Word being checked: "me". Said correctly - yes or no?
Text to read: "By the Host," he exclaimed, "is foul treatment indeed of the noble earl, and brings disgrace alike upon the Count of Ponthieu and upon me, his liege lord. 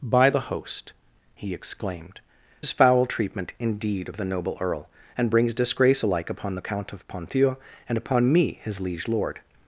yes